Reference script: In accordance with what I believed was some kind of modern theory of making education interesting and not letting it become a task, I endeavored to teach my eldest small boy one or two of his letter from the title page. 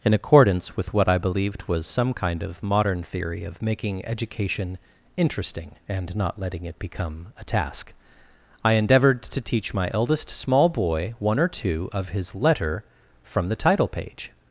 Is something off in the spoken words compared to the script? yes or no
no